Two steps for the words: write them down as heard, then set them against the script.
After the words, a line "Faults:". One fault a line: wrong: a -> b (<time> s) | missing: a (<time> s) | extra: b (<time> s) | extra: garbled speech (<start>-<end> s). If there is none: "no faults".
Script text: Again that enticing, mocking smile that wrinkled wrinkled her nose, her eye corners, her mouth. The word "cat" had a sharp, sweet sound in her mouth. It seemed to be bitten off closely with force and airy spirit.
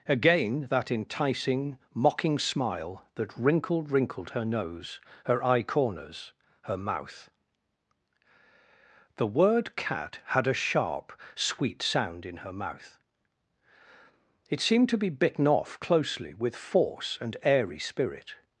Again that enticing, mocking smile that wrinkled wrinkled her nose, her eye corners, her mouth. The word "cat" had a sharp, sweet sound in her mouth. It seemed to be bitten off closely with force and airy spirit.
Faults:
no faults